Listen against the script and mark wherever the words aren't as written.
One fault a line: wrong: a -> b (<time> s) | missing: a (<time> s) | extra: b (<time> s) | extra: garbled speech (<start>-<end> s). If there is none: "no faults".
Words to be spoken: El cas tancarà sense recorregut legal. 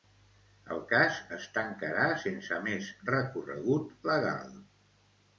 extra: es (1.4 s)
extra: més (2.7 s)